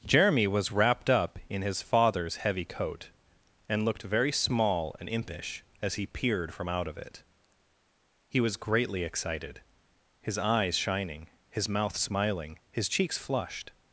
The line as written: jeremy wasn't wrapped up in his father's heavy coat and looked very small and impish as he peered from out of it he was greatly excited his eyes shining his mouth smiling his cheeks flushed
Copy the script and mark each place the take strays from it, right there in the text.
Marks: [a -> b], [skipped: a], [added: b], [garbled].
jeremy [wasn't -> was] wrapped up in his father's heavy coat and looked very small and impish as he peered from out of it he was greatly excited his eyes shining his mouth smiling his cheeks flushed